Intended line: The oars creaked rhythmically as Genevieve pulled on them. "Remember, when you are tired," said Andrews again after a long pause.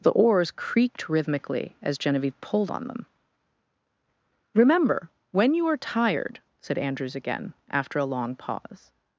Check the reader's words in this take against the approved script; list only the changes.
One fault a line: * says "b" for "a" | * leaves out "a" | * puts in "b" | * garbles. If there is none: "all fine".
all fine